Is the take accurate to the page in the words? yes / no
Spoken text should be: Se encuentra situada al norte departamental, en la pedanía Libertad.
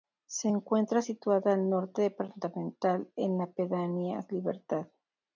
yes